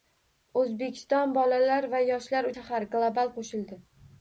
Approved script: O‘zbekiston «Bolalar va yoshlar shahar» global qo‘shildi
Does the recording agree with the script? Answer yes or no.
yes